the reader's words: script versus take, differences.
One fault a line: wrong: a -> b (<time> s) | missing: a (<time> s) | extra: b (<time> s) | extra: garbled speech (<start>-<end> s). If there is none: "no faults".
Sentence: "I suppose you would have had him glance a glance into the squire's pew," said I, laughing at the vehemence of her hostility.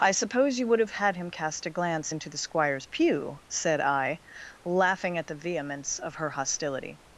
wrong: glance -> cast (1.3 s)